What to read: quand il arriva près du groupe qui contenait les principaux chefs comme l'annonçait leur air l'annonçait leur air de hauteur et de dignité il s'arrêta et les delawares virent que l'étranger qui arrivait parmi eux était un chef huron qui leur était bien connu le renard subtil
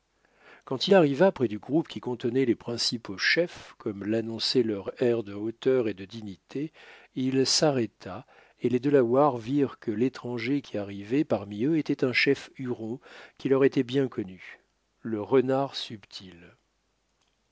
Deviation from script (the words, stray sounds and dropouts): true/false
true